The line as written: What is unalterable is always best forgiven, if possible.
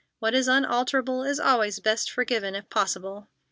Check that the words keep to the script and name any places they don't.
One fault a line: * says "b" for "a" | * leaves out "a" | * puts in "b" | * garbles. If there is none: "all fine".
all fine